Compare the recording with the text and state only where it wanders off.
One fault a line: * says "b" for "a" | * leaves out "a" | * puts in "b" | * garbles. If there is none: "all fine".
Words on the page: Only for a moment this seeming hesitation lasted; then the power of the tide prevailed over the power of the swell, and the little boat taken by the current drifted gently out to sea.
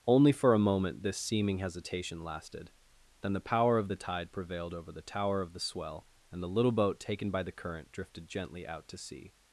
* says "tower" for "power"